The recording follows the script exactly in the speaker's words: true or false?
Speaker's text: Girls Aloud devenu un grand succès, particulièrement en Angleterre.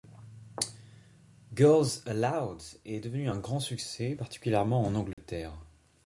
false